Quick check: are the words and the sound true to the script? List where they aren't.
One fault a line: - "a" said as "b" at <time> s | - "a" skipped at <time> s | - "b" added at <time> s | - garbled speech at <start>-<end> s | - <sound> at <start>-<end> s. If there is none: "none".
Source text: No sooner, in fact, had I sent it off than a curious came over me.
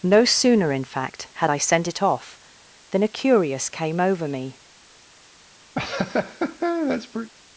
- laugh at 5.7-7.3 s